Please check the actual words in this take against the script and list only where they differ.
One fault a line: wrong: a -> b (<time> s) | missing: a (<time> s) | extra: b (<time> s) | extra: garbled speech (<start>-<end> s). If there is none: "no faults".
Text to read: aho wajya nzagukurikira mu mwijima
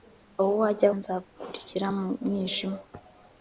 no faults